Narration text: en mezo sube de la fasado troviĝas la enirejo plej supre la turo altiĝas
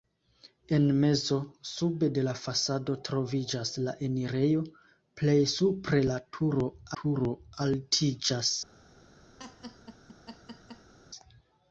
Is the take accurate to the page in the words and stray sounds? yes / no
no